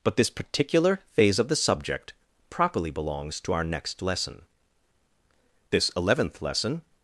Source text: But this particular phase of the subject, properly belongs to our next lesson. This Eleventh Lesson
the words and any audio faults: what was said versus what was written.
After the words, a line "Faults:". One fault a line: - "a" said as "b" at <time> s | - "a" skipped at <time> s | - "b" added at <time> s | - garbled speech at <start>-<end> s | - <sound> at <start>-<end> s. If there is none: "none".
But this particular phase of the subject, properly belongs to our next lesson. This Eleventh Lesson
Faults:
none